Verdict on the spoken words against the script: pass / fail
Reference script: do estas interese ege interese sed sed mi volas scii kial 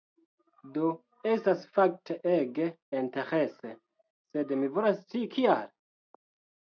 fail